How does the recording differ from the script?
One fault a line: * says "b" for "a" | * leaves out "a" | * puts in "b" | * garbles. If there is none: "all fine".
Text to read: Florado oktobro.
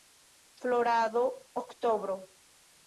all fine